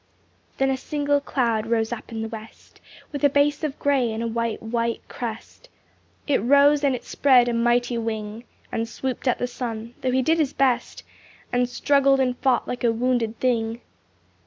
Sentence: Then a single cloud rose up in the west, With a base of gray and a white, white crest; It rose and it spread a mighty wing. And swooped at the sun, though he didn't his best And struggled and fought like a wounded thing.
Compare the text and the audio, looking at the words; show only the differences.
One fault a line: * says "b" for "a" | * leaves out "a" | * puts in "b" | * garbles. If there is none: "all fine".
* says "did" for "didn't"